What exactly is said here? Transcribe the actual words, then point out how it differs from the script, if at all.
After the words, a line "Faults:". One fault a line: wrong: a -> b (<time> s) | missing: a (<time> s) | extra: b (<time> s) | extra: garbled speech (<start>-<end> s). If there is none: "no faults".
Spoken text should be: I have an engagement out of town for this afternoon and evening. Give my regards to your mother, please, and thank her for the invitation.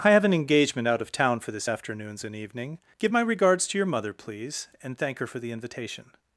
I have an engagement out of town for this afternoons and evening. Give my regards to your mother, please, and thank her for the invitation.
Faults:
wrong: afternoon -> afternoons (1.7 s)